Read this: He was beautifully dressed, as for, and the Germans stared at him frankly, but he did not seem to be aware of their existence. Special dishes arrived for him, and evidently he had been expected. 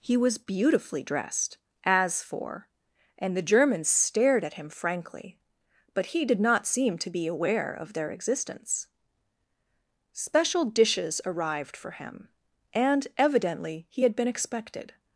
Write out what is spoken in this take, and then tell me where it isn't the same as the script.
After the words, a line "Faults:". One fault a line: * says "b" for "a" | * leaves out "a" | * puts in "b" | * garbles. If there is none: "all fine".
He was beautifully dressed, as for, and the Germans stared at him frankly, but he did not seem to be aware of their existence. Special dishes arrived for him, and evidently he had been expected.
Faults:
all fine